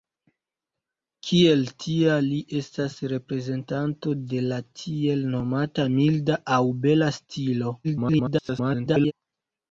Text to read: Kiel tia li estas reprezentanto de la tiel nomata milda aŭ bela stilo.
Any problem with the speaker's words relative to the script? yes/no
yes